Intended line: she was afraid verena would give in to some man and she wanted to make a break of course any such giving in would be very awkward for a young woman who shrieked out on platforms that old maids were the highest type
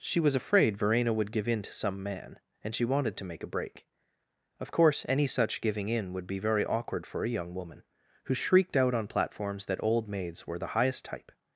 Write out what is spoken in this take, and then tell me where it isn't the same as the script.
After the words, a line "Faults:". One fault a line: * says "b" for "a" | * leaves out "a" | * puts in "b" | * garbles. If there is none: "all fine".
she was afraid verena would give in to some man and she wanted to make a break of course any such giving in would be very awkward for a young woman who shrieked out on platforms that old maids were the highest type
Faults:
all fine